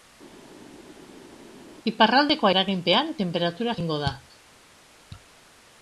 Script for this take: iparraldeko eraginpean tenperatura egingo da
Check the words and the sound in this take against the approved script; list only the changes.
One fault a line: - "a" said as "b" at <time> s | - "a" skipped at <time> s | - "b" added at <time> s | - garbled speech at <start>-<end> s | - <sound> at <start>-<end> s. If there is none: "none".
none